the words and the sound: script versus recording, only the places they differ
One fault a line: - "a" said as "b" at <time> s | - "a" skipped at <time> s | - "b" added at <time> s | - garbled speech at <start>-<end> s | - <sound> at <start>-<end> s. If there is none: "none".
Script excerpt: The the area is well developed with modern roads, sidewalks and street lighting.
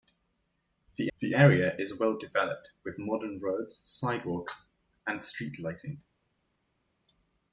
none